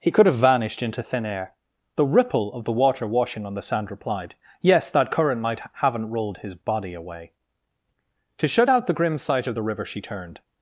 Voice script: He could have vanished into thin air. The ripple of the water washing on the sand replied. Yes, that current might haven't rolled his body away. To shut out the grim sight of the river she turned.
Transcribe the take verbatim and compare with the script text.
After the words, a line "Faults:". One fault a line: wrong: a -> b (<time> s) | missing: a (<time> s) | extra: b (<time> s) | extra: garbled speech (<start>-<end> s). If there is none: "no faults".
He could have vanished into thin air. The ripple of the water washing on the sand replied. Yes, that current might haven't rolled his body away. To shut out the grim sight of the river she turned.
Faults:
no faults